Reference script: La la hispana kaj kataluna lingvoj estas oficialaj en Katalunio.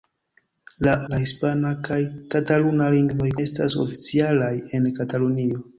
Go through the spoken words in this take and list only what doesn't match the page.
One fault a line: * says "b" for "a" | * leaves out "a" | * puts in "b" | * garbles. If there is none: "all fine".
all fine